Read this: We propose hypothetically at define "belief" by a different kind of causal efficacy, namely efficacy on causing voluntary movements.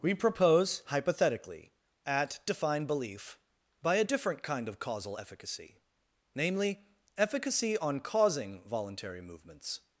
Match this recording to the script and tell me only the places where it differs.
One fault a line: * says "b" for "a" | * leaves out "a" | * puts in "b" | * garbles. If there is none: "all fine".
all fine